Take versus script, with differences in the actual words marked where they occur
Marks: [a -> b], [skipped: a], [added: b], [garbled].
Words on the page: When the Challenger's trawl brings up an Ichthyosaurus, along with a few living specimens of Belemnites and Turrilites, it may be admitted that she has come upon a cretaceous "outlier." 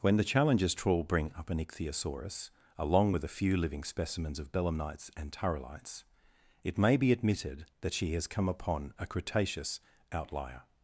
When the Challenger's trawl [brings -> bring] up an Ichthyosaurus, along with a few living specimens of Belemnites and Turrilites, it may be admitted that she has come upon a cretaceous "outlier."